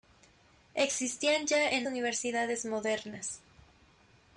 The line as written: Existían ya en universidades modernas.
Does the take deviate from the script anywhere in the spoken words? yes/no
no